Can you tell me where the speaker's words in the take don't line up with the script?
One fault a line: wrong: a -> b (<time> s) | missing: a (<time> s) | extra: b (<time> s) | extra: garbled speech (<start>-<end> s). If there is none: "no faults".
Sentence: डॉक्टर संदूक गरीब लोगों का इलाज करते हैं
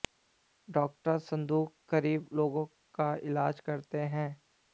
no faults